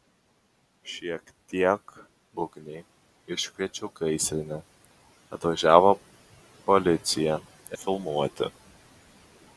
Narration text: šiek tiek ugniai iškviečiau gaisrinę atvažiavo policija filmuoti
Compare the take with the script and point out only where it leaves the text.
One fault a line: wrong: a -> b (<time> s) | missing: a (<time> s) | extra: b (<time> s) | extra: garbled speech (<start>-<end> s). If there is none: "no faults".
no faults